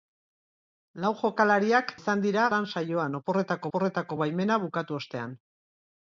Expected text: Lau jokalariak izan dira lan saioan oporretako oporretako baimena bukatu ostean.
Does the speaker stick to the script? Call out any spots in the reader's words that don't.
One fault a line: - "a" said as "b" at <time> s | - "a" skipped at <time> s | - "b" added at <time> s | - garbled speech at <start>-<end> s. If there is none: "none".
none